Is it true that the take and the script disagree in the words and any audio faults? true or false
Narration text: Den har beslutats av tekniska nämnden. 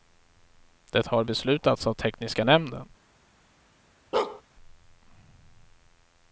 true